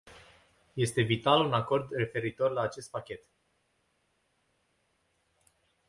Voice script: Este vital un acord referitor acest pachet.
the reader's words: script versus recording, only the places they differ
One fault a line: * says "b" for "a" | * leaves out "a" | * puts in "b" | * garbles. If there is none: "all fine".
* puts in "la"